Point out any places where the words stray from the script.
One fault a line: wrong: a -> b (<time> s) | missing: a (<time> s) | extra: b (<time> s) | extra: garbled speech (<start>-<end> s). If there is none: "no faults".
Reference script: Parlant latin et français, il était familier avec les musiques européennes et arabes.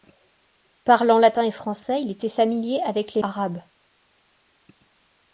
missing: musiques européennes et (3.2 s)